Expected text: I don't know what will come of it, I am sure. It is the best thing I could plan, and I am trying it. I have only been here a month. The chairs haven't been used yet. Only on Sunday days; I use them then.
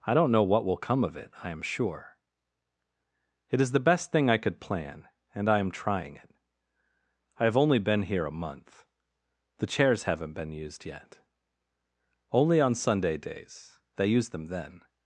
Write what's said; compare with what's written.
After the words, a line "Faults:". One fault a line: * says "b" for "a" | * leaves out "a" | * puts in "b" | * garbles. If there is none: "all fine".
I don't know what will come of it, I am sure. It is the best thing I could plan, and I am trying it. I have only been here a month. The chairs haven't been used yet. Only on Sunday days; they use them then.
Faults:
* says "they" for "I"